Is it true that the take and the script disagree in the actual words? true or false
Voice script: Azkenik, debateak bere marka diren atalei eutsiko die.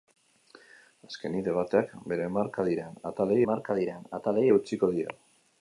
true